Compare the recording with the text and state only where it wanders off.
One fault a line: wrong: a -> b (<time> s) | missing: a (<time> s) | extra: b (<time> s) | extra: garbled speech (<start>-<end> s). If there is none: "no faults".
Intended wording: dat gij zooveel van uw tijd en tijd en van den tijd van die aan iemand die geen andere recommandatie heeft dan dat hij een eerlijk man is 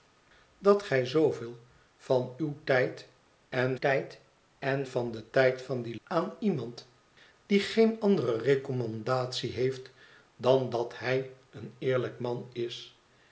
no faults